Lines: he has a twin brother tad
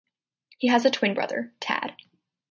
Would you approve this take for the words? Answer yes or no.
yes